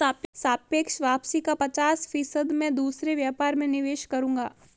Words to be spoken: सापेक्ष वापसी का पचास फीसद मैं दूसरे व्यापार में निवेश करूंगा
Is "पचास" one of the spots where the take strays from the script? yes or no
no